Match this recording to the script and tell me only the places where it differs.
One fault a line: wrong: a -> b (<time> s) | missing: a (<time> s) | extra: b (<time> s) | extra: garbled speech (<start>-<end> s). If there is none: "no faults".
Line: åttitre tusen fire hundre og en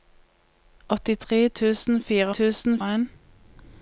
wrong: hundre -> tusen (2.4 s)